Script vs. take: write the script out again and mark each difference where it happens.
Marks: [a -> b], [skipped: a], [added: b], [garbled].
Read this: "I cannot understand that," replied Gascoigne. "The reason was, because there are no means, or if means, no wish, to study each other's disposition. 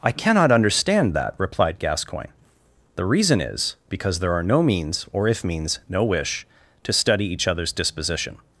"I cannot understand that," replied Gascoigne. "The reason [was, -> is] because there are no means, or if means, no wish, to study each other's disposition.